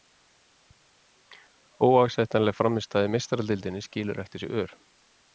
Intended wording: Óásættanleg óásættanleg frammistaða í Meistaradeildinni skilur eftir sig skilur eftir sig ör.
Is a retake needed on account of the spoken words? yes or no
yes